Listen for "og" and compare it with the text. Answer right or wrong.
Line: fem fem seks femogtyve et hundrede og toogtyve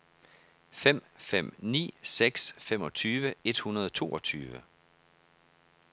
right